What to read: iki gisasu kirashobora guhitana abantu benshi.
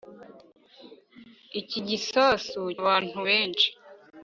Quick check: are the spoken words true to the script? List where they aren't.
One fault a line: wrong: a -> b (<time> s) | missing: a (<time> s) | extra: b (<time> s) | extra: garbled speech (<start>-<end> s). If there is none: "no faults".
missing: kirashobora guhitana (2.6 s)